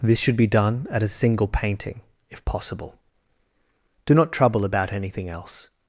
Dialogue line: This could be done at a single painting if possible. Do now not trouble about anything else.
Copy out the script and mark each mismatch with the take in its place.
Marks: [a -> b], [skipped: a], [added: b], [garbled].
This [could -> should] be done at a single painting if possible. Do [skipped: now] not trouble about anything else.